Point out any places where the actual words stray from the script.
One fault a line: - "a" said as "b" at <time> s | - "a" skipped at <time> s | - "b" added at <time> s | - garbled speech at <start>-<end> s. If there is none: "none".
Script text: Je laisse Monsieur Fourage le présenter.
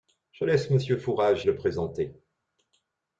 none